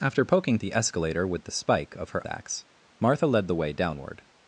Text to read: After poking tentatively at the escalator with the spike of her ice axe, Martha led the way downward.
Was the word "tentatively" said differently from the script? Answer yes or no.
yes